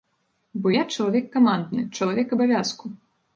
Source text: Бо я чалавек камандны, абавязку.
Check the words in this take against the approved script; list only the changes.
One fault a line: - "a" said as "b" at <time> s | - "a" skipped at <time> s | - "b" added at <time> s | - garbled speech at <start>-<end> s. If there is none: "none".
- "чалавек" added at 1.9 s